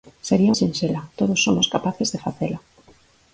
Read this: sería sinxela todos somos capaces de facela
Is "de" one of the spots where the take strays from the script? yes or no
no